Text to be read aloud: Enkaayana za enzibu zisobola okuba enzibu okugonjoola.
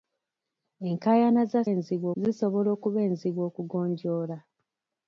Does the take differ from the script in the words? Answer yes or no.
no